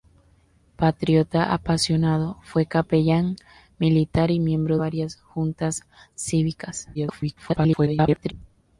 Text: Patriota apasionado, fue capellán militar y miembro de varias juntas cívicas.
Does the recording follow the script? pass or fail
fail